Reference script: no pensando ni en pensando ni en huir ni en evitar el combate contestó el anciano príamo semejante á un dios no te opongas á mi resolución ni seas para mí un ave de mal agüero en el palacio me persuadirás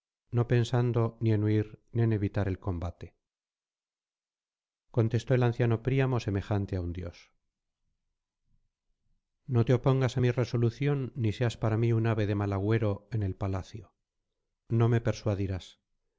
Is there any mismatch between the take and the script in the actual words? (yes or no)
yes